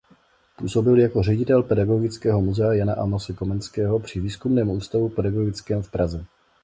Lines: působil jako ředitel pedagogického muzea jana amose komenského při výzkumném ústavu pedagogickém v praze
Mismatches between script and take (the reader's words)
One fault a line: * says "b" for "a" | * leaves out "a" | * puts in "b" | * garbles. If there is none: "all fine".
all fine